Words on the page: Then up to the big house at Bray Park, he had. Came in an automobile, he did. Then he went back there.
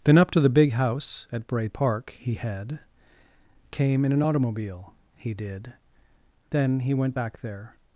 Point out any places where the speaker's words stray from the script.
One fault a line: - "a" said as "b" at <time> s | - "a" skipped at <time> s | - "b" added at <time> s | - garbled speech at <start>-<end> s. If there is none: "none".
none